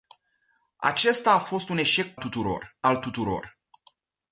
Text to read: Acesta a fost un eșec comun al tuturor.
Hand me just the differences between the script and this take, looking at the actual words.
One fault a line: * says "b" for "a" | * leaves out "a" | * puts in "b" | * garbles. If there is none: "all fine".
* says "tuturor" for "comun"